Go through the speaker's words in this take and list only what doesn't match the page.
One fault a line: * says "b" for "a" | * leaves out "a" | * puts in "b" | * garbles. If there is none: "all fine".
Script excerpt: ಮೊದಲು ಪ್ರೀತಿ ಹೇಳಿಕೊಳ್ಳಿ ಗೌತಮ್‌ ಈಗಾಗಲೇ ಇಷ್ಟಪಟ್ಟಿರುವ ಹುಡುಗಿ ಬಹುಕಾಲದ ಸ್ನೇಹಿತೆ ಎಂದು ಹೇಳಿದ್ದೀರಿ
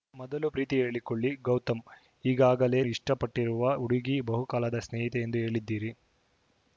all fine